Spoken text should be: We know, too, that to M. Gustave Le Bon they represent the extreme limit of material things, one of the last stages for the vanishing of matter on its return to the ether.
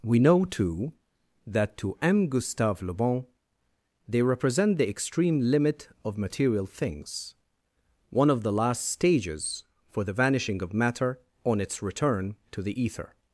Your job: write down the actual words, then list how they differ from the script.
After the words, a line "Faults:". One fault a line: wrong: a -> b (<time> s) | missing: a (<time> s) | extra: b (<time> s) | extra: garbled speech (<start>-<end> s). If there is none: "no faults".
We know, too, that to M. Gustave Le Bon they represent the extreme limit of material things, one of the last stages for the vanishing of matter on its return to the ether.
Faults:
no faults